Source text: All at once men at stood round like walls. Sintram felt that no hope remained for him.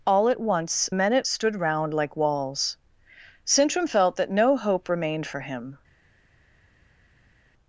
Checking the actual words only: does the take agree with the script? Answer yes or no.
yes